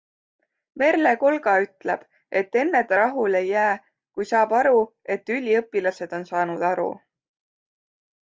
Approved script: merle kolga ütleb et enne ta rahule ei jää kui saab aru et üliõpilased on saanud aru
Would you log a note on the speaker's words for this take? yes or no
no